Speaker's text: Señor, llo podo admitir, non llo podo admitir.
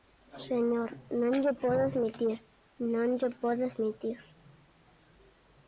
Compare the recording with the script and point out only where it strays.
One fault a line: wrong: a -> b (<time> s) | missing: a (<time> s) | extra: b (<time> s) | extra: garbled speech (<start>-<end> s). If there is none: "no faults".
extra: non (1.2 s)